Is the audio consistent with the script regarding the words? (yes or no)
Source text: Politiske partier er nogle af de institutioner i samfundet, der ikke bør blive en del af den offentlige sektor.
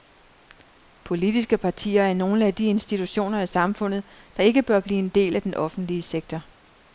yes